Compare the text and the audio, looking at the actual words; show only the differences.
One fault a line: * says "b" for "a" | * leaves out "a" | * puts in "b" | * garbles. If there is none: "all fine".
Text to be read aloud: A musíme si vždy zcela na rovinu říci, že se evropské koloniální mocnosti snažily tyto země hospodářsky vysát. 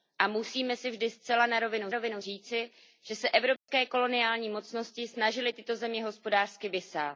* puts in "rovinu"